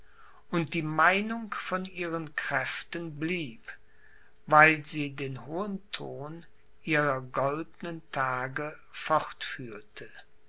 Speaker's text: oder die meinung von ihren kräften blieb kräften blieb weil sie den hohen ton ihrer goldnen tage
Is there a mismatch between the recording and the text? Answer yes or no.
yes